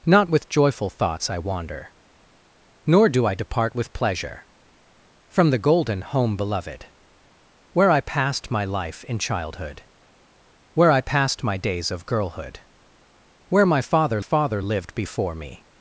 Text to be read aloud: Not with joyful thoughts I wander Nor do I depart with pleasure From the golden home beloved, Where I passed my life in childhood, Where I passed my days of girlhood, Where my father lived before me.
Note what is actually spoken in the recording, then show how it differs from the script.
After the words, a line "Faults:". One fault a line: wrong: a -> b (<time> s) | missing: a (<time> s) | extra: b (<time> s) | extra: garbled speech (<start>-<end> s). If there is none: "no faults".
Not with joyful thoughts I wander Nor do I depart with pleasure From the golden home beloved, Where I passed my life in childhood, Where I passed my days of girlhood, Where my father father lived before me.
Faults:
extra: father (14.2 s)